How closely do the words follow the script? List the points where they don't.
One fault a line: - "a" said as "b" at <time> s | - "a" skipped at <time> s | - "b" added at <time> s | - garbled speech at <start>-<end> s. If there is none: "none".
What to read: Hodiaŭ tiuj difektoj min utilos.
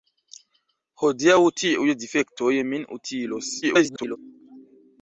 - garbled speech at 3.6-4.2 s